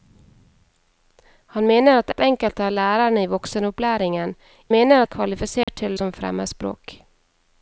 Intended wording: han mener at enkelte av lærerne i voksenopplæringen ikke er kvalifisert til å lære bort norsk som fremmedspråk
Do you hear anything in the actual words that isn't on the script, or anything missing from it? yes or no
yes